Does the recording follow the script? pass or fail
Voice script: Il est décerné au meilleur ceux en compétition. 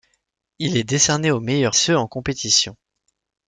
pass